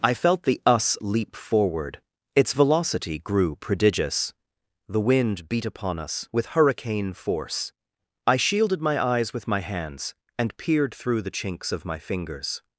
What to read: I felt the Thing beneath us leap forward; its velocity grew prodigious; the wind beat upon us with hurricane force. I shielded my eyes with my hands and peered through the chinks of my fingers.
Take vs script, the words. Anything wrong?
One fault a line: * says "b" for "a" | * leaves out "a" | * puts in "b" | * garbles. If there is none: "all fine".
* leaves out "Thing beneath"